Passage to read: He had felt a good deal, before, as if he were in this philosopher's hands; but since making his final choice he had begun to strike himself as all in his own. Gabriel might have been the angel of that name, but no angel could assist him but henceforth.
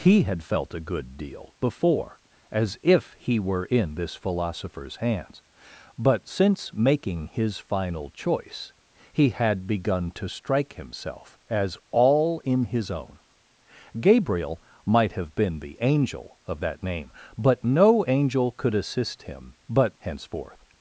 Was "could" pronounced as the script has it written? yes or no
yes